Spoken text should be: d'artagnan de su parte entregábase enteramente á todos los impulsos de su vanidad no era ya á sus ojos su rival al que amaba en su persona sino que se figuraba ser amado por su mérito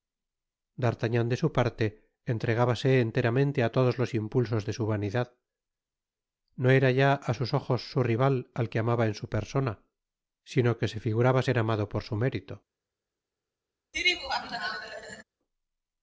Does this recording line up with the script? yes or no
yes